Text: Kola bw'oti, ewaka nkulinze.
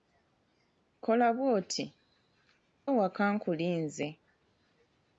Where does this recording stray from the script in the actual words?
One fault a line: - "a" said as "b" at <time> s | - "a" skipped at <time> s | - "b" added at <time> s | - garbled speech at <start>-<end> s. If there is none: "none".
none